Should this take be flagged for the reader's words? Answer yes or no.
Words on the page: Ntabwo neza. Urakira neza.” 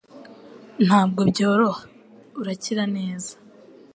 yes